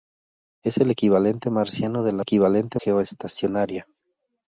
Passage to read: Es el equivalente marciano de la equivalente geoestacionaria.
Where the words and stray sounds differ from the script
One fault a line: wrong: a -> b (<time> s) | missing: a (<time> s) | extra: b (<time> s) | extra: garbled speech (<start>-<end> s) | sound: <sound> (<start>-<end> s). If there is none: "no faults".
no faults